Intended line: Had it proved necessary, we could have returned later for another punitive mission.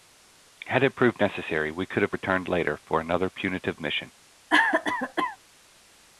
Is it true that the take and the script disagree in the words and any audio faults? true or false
true